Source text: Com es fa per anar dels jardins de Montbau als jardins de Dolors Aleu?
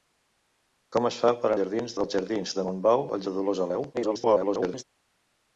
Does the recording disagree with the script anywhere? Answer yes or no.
yes